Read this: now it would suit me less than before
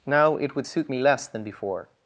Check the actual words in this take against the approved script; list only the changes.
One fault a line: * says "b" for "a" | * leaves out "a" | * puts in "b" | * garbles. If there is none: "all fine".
all fine